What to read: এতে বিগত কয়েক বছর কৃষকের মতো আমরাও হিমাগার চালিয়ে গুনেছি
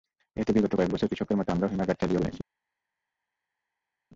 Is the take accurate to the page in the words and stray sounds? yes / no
yes